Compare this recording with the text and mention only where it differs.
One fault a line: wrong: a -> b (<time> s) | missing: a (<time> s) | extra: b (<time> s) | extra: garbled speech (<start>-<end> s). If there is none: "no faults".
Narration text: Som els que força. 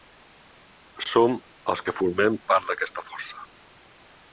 extra: formem part d'aquesta (2.0 s)